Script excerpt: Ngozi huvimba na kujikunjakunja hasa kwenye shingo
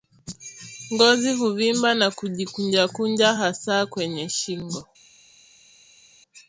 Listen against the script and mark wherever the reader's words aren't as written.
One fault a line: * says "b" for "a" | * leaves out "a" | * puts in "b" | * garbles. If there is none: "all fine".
all fine